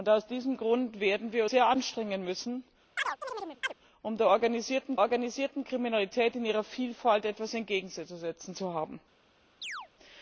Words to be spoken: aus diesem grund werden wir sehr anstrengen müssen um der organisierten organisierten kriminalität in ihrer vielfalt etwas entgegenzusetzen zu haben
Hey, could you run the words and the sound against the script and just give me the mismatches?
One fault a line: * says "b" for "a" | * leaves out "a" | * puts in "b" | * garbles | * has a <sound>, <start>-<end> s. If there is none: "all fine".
* has a chirp, 3.0-3.7 s
* has a chirp, 9.6-9.9 s